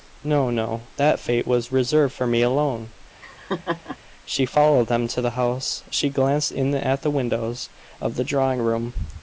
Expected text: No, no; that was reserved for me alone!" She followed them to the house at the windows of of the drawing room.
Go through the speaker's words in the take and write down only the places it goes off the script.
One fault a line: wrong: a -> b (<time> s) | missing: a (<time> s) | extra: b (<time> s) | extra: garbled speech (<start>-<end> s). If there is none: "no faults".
extra: fate (1.2 s)
extra: she glanced in (5.9 s)
missing: of (8.1 s)